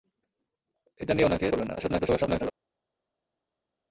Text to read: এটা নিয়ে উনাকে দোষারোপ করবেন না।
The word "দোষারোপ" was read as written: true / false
false